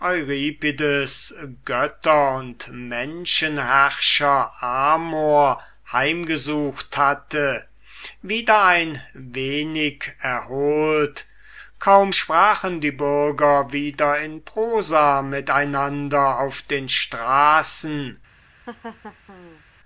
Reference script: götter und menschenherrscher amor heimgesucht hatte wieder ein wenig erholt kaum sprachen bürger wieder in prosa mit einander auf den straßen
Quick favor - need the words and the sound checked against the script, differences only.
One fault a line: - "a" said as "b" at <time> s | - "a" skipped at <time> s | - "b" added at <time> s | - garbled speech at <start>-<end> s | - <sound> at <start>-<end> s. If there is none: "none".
- "die" added at 12.8 s
- laugh at 18.7-19.6 s